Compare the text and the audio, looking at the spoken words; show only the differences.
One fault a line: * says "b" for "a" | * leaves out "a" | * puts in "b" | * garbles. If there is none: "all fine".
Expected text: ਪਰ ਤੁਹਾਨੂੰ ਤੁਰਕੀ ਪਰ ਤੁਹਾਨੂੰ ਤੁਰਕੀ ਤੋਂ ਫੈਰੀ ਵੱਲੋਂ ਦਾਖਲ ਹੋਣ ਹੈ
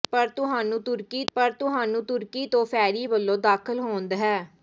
all fine